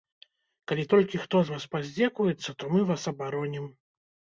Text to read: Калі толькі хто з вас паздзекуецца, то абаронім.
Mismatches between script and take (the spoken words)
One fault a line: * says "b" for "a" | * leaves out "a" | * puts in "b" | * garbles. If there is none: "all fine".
* puts in "мы вас"